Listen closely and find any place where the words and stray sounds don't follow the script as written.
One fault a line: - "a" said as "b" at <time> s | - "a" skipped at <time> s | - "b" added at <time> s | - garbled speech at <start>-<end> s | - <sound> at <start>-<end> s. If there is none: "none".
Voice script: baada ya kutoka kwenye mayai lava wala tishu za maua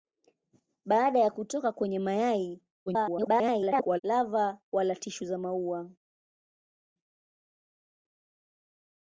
- garbled speech at 2.9-4.0 s